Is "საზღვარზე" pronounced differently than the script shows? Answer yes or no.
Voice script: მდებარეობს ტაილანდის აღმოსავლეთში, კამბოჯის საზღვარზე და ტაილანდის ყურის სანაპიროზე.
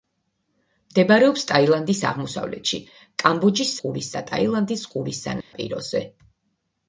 yes